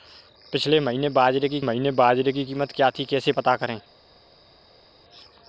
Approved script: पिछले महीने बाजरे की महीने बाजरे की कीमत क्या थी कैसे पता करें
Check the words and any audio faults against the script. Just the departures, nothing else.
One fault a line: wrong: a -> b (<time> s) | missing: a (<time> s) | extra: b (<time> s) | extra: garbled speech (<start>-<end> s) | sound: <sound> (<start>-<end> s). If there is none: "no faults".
no faults